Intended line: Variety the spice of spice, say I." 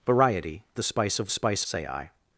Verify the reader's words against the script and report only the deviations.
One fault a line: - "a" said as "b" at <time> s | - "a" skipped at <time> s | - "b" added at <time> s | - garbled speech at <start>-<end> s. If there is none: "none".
none